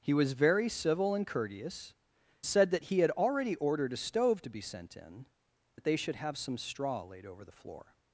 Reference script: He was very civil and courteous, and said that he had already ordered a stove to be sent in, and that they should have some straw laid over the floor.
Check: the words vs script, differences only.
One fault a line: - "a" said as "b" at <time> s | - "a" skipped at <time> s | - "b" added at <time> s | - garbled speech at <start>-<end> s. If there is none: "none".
- "and" skipped at 1.9 s
- "and" skipped at 5.3 s